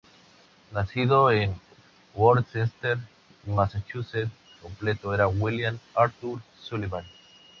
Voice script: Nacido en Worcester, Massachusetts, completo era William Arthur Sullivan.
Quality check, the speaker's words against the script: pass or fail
pass